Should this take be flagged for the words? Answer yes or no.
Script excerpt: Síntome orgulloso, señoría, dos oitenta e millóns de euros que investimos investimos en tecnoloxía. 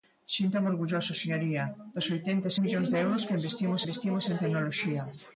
no